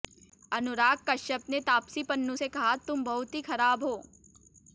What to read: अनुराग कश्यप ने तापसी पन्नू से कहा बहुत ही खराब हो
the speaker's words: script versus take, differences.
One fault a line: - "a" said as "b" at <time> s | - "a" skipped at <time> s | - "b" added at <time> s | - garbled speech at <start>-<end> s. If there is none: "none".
- "तुम" added at 2.9 s